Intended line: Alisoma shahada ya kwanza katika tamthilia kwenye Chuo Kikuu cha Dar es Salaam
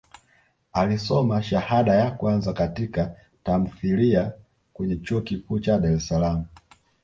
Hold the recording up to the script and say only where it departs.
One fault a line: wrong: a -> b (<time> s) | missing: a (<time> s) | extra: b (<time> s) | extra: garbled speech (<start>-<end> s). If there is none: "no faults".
no faults